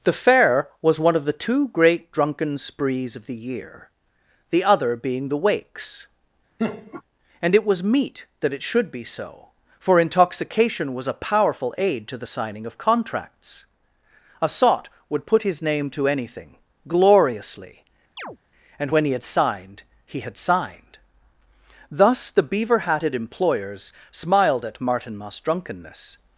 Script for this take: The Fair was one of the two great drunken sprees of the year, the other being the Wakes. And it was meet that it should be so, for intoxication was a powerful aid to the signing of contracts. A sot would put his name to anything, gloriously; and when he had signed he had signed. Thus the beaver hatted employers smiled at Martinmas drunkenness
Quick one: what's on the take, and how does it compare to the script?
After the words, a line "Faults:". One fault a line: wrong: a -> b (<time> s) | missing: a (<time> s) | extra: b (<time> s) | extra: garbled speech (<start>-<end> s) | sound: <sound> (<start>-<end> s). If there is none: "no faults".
The Fair was one of the two great drunken sprees of the year, the other being the Wakes. And it was meet that it should be so, for intoxication was a powerful aid to the signing of contracts. A sot would put his name to anything, gloriously; and when he had signed he had signed. Thus the beaver hatted employers smiled at Martinmas drunkenness
Faults:
sound: laugh (6.6-7.0 s)
sound: chirp (18.2-18.4 s)